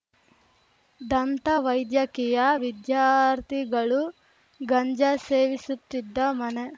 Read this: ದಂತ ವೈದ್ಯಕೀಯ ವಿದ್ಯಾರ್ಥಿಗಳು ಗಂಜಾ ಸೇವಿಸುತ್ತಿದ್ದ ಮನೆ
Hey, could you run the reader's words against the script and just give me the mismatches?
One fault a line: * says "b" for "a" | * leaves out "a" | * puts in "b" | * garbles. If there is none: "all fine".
all fine